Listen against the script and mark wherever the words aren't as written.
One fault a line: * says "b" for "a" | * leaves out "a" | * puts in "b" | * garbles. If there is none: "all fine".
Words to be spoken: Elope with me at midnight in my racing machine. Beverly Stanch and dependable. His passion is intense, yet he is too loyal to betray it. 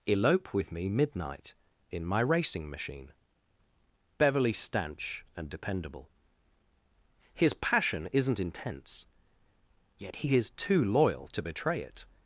* leaves out "at"
* says "isn't" for "is"